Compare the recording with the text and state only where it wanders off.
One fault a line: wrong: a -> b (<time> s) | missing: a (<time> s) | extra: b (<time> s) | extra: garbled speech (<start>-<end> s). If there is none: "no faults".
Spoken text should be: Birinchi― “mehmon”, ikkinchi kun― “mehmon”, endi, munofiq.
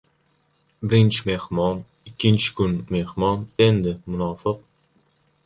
no faults